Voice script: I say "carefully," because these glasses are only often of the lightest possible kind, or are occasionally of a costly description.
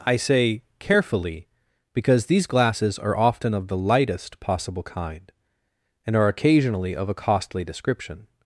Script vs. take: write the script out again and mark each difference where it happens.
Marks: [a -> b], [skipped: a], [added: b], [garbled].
I say "carefully," because these glasses are [skipped: only] often of the lightest possible kind, [or -> and] are occasionally of a costly description.